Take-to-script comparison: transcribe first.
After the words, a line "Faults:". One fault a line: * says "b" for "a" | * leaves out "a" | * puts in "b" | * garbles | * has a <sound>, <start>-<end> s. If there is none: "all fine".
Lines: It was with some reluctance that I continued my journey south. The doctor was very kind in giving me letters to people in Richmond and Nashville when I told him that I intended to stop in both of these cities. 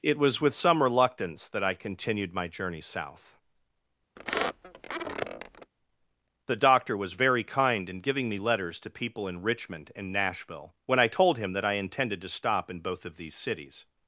It was with some reluctance that I continued my journey south. The doctor was very kind in giving me letters to people in Richmond and Nashville when I told him that I intended to stop in both of these cities.
Faults:
* has a squeak, 4.2-5.7 s